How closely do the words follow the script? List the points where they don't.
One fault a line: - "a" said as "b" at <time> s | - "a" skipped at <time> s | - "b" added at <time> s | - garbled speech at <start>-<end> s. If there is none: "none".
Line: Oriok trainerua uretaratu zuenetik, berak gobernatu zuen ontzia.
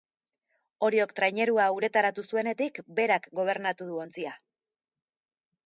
- "zuen" said as "du" at 3.9 s